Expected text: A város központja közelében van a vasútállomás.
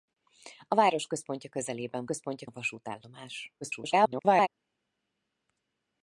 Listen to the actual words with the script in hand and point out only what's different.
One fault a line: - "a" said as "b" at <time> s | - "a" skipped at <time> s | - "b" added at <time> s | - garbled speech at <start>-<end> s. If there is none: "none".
- "van" said as "központja" at 2.0 s
- garbled speech at 3.6-4.5 s